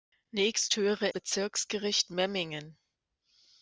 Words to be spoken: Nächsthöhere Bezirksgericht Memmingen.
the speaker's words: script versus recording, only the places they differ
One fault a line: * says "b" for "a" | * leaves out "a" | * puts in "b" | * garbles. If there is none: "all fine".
all fine